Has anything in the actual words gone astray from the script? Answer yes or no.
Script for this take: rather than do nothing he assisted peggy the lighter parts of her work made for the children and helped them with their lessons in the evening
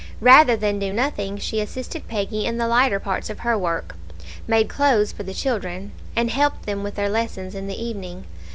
yes